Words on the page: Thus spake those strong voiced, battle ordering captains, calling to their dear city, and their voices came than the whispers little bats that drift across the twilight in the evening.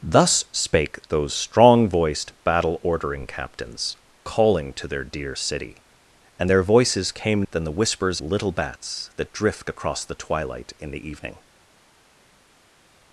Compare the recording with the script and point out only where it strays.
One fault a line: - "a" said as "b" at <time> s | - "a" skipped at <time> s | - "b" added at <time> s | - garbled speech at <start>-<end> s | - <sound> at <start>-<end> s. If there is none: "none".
none